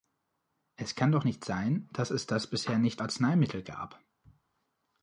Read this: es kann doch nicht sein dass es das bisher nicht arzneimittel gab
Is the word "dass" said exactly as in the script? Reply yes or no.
yes